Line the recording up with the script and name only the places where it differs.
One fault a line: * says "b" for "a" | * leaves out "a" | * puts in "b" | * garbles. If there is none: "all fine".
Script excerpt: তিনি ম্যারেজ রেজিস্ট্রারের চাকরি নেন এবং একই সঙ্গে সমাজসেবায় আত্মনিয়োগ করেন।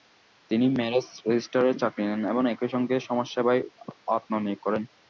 all fine